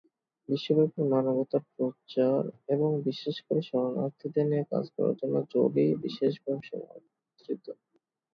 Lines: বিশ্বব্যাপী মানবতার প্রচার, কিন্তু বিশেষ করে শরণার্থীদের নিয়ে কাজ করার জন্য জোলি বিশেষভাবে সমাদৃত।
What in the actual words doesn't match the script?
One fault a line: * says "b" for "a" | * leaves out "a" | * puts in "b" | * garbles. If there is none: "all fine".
* says "এবং" for "কিন্তু"